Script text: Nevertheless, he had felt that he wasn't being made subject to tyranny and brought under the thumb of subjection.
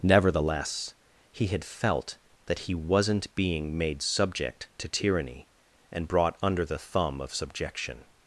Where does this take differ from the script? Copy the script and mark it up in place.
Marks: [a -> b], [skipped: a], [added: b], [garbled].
Nevertheless, he had felt that he wasn't being made subject to tyranny and brought under the thumb of subjection.